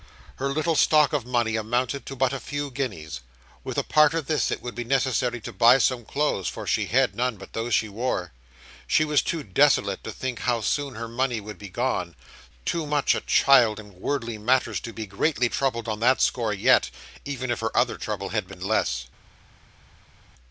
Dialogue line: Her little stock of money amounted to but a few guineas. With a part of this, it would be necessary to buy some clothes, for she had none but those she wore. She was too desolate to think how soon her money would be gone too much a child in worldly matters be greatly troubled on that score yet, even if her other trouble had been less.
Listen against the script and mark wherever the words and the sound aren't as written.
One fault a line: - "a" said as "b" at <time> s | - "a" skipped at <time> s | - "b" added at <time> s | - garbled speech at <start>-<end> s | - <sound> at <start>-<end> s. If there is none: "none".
- "to" added at 14.8 s